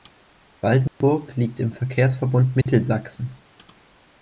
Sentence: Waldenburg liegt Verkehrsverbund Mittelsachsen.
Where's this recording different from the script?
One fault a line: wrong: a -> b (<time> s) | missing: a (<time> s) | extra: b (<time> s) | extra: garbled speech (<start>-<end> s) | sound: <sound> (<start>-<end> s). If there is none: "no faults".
sound: dropout (0.9-1.0 s)
extra: im (1.6 s)
sound: dropout (2.6-2.7 s)